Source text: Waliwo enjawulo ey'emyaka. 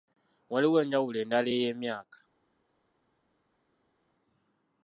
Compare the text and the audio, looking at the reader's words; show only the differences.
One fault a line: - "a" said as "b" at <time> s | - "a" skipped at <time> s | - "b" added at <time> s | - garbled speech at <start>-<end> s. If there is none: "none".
- "endala" added at 1.2 s